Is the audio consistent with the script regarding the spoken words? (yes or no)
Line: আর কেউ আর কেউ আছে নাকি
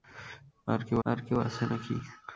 yes